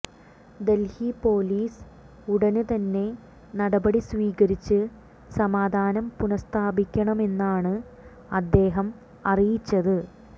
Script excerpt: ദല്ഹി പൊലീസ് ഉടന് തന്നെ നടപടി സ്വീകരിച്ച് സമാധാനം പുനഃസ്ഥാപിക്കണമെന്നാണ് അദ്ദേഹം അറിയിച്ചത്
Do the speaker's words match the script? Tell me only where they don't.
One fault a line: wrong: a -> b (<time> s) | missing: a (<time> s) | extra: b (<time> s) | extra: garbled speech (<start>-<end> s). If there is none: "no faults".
no faults